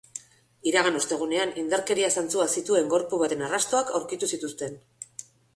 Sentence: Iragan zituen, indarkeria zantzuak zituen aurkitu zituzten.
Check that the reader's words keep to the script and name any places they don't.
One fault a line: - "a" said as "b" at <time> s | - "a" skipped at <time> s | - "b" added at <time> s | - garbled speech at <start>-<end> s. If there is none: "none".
- "zituen" said as "ostegunean" at 1.0 s
- "gorpu baten arrastoak" added at 3.0 s